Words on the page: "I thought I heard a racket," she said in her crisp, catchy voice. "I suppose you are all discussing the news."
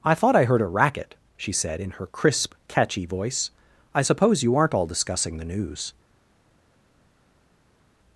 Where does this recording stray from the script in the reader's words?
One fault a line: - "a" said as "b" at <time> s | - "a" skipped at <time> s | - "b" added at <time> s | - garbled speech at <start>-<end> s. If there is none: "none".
- "are" said as "aren't" at 4.5 s